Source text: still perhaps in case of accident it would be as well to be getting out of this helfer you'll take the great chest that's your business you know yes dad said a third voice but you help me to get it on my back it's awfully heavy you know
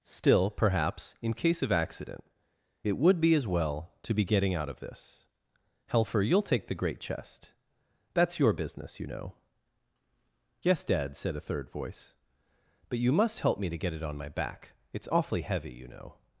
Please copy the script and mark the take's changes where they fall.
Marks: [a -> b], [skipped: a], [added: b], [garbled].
still perhaps in case of accident it would be as well to be getting out of this helfer you'll take the great chest that's your business you know yes dad said a third voice but you [added: must] help me to get it on my back it's awfully heavy you know